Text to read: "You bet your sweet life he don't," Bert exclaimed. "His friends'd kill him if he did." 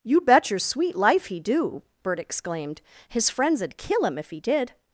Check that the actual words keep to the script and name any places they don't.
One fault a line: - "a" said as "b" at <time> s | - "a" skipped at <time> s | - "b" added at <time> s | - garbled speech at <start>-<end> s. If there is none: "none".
- "don't" said as "do" at 1.4 s